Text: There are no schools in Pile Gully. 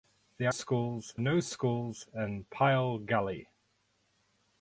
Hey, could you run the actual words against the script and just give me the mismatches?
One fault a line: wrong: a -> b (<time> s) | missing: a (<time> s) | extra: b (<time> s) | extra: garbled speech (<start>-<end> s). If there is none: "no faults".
wrong: are -> schools (0.5 s)